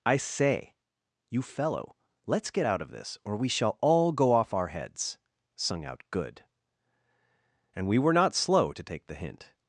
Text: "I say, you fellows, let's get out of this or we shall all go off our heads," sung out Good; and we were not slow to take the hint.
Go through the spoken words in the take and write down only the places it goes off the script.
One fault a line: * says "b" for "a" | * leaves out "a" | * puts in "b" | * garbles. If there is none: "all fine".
* says "fellow" for "fellows"